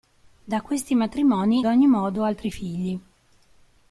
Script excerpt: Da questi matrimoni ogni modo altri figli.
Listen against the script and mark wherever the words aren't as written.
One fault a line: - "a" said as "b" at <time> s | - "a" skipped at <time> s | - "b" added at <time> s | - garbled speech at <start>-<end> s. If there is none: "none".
none